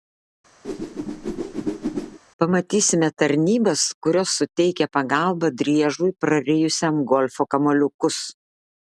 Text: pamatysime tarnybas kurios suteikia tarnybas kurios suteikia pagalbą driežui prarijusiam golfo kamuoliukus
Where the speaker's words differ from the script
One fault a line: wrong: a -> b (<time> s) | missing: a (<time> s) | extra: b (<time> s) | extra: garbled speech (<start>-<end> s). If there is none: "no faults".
missing: tarnybas kurios suteikia (4.9 s)